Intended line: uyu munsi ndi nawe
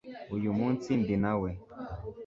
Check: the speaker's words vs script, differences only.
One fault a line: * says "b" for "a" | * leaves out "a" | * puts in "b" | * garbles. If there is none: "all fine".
all fine